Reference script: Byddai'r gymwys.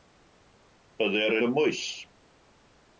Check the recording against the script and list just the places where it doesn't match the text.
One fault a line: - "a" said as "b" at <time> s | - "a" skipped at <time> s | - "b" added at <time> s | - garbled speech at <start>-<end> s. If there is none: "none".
none